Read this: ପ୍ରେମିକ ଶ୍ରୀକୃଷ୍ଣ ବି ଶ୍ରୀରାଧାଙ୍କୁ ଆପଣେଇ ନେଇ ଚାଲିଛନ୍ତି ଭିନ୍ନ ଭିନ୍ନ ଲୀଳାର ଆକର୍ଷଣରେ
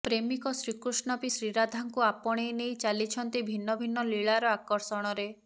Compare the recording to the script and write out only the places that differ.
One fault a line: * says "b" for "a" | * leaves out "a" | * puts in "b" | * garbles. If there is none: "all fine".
all fine